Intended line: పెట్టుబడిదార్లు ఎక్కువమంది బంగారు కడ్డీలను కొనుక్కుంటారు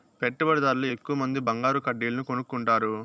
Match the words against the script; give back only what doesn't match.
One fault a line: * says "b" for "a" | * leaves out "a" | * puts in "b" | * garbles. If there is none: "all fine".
all fine